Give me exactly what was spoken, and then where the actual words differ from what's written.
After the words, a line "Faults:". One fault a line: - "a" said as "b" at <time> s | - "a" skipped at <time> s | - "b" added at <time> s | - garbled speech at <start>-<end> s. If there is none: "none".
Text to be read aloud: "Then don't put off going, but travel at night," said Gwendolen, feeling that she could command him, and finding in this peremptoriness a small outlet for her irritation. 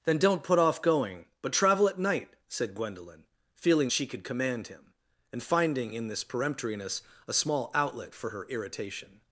"Then don't put off going, but travel at night," said Gwendolen, feeling she could command him, and finding in this peremptoriness a small outlet for her irritation.
Faults:
- "that" skipped at 3.9 s